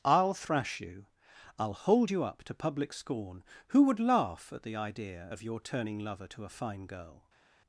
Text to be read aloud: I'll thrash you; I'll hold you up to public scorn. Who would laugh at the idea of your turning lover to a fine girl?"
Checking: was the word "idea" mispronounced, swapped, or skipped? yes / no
no